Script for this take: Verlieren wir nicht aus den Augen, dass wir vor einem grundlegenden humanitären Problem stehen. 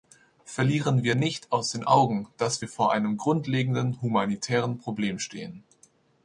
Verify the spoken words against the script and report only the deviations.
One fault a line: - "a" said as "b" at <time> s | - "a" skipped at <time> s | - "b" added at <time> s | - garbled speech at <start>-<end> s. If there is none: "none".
none